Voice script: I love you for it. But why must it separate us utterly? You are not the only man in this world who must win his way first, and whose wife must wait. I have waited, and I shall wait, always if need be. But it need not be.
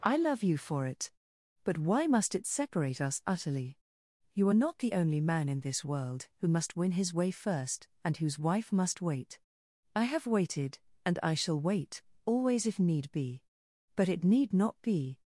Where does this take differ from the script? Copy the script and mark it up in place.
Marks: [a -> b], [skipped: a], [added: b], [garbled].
I love you for it. But why must it separate us utterly? You are not the only man in this world who must win his way first, and whose wife must wait. I have waited, and I shall wait, always if need be. But it need not be.